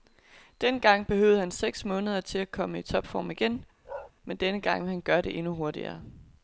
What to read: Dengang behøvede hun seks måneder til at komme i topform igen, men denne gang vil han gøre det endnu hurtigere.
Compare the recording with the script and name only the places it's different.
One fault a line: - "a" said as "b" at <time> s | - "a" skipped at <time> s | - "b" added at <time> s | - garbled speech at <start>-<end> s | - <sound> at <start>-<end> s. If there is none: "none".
- "hun" said as "han" at 1.4 s
- bark at 3.8-4.1 s